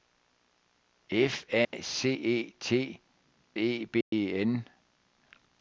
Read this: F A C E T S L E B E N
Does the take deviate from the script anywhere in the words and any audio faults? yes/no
yes